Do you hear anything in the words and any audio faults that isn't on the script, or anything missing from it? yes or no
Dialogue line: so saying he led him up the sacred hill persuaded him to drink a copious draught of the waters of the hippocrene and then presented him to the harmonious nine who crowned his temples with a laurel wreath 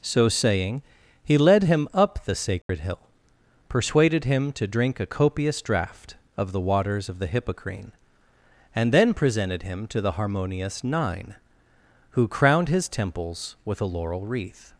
yes